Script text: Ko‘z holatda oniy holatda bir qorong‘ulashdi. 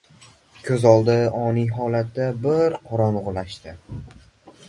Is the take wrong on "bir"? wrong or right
right